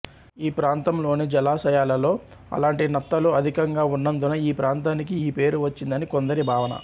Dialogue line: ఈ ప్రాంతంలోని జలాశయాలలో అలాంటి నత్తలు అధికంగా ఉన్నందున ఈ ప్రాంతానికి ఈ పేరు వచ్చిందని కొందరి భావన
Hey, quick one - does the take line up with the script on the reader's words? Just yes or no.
yes